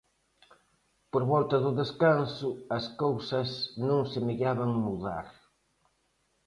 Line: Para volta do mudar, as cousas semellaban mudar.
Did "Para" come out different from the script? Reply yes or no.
yes